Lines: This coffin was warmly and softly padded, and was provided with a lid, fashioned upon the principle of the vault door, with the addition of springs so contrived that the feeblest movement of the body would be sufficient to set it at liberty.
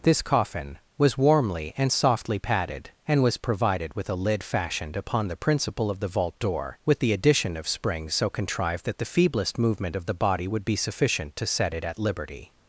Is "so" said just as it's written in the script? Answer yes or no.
yes